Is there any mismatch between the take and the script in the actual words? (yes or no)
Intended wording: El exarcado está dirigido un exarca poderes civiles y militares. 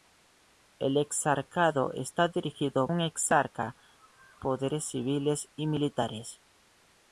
no